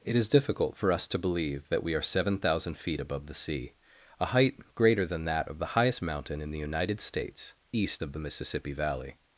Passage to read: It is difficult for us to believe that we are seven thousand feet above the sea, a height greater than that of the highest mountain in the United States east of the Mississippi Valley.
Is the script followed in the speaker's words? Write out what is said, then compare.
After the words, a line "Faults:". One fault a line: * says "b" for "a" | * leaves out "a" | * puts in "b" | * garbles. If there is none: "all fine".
It is difficult for us to believe that we are seven thousand feet above the sea, a height greater than that of the highest mountain in the United States east of the Mississippi Valley.
Faults:
all fine